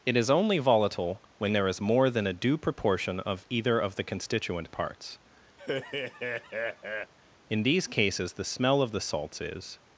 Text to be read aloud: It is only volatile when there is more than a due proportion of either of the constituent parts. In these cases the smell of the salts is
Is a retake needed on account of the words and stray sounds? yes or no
yes